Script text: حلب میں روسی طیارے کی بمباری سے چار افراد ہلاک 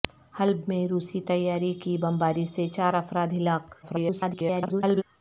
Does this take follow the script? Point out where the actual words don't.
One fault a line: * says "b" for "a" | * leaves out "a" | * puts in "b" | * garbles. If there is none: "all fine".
* garbles